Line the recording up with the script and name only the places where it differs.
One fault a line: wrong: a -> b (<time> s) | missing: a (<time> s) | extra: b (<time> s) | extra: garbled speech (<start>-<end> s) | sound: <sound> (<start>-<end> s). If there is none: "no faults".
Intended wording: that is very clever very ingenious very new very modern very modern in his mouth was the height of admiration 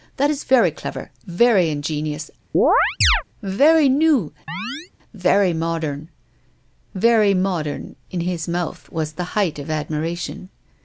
sound: chirp (2.5-3.2 s)
sound: chirp (4.5-4.9 s)